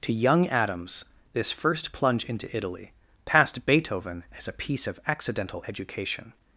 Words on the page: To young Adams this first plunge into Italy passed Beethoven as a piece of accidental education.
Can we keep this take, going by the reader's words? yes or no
yes